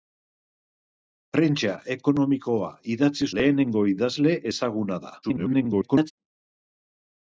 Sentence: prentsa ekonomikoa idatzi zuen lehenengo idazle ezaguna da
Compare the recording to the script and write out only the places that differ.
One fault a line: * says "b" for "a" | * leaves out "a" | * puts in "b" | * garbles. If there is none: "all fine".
* leaves out "zuen"
* garbles